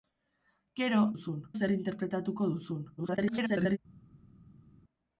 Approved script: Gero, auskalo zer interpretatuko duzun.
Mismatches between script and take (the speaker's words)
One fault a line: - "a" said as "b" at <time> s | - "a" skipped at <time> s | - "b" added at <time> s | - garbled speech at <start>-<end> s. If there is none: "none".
- "auskalo" said as "duzun" at 1.1 s
- garbled speech at 3.0-3.8 s